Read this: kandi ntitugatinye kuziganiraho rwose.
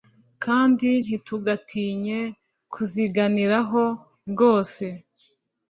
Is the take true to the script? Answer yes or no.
yes